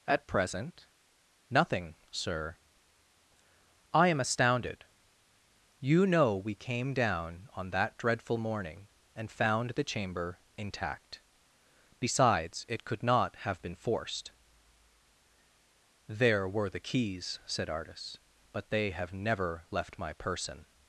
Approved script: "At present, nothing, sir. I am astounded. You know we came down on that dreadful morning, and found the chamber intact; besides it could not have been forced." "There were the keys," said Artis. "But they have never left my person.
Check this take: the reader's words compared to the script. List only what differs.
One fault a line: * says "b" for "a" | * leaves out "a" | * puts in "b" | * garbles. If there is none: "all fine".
all fine